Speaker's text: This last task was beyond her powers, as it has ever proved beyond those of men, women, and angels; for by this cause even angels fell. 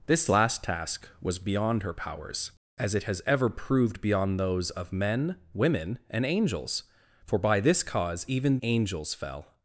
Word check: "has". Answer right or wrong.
right